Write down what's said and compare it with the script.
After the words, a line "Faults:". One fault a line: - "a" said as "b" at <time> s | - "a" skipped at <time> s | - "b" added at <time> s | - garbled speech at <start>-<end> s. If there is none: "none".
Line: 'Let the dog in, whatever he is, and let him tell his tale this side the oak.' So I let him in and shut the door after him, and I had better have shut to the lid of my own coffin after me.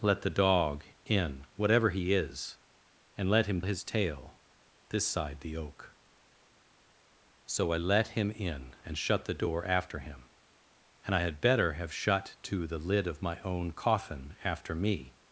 'Let the dog in, whatever he is, and let him his tale this side the oak.' So I let him in and shut the door after him, and I had better have shut to the lid of my own coffin after me.
Faults:
- "tell" skipped at 3.6 s